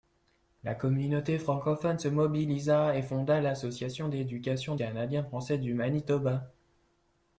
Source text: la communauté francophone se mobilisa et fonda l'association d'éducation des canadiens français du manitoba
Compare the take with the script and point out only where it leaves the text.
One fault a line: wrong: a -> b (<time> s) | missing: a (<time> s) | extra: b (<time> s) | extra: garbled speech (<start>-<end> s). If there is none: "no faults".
missing: des (4.8 s)